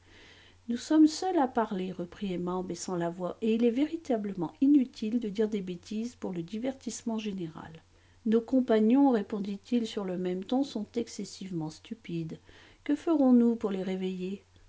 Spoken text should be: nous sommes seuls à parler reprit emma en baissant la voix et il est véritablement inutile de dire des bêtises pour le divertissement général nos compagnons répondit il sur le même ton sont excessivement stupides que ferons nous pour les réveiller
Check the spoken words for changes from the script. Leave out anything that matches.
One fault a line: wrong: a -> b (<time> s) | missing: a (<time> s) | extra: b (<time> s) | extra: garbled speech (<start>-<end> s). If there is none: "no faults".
no faults